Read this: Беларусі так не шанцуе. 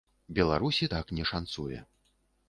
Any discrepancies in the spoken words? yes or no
no